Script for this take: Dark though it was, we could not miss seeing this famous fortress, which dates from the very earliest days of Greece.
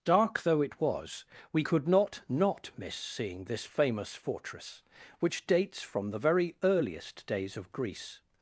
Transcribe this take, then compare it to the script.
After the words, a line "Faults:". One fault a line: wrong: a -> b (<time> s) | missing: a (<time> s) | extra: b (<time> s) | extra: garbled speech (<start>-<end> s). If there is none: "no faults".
Dark though it was, we could not not miss seeing this famous fortress, which dates from the very earliest days of Greece.
Faults:
extra: not (2.3 s)